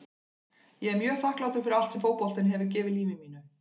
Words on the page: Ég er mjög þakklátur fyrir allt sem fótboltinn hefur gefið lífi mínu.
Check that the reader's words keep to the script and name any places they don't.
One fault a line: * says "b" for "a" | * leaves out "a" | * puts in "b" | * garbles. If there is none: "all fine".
all fine